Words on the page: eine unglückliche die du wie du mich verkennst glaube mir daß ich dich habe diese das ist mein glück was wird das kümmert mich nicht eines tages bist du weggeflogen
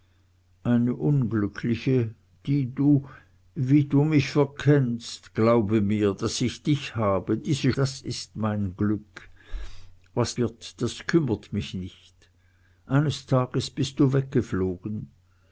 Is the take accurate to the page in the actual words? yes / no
yes